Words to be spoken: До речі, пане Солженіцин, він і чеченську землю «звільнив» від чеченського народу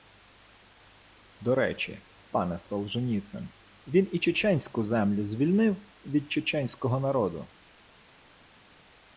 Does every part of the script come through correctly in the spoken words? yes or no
yes